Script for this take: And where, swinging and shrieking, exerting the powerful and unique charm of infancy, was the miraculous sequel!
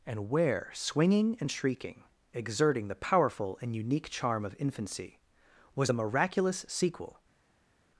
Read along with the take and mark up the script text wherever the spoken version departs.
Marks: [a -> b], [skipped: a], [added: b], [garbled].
And where, swinging and shrieking, exerting the powerful and unique charm of infancy, was the miraculous sequel!